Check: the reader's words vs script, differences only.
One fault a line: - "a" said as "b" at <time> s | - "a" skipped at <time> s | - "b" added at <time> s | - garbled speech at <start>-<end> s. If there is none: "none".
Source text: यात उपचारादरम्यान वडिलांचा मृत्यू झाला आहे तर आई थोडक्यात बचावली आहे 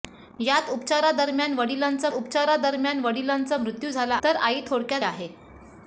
- "उपचारादरम्यान वडिलांचा" added at 2.1 s
- "आहे" skipped at 4.2 s
- "बचावली" skipped at 5.0 s